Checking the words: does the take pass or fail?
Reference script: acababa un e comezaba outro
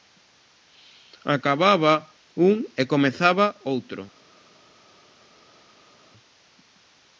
pass